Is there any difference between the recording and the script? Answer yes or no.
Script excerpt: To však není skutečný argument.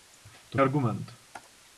yes